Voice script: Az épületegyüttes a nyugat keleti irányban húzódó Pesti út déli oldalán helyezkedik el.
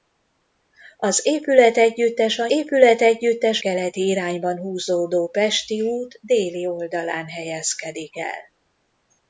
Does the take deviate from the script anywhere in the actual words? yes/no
yes